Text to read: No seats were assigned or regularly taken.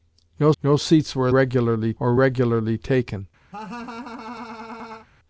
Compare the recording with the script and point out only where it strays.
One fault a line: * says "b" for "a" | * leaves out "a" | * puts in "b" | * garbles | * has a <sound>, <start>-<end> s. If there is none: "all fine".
* puts in "no"
* says "regularly" for "assigned"
* has a laugh, 3.5-5.1 s